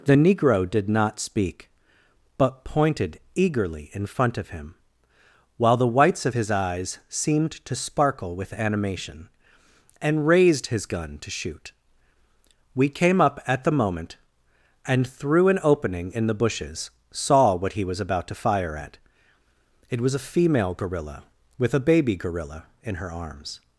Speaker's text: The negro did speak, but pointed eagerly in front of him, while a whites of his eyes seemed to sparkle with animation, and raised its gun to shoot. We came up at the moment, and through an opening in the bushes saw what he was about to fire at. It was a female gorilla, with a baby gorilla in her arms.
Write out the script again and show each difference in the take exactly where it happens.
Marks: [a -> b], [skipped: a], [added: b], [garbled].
The negro did [added: not] speak, but pointed eagerly in front of him, while [a -> the] whites of his eyes seemed to sparkle with animation, and raised [its -> his] gun to shoot. We came up at the moment, and through an opening in the bushes saw what he was about to fire at. It was a female gorilla, with a baby gorilla in her arms.